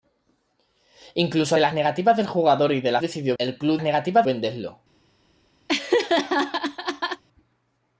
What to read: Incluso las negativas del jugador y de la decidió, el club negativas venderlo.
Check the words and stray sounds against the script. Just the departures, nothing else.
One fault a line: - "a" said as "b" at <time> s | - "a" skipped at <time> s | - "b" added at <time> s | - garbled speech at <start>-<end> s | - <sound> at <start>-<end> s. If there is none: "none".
- laugh at 5.7-7.2 s